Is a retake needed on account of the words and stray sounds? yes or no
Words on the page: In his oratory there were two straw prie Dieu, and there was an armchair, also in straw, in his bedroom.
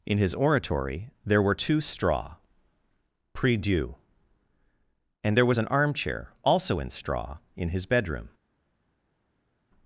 no